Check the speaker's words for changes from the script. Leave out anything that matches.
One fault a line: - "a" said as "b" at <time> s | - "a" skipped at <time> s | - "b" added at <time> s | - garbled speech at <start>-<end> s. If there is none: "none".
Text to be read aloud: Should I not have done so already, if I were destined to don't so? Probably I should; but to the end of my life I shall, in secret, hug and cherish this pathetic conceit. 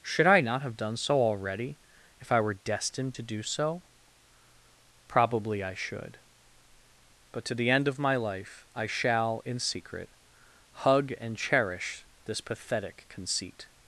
- "don't" said as "do" at 3.2 s